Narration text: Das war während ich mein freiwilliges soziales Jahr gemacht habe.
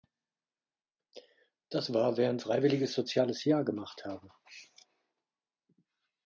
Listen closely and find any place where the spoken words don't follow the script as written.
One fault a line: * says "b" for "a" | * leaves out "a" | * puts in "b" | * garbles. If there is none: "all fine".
* leaves out "ich mein"